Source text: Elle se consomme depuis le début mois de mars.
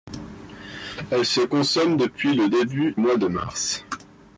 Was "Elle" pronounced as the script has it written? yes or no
yes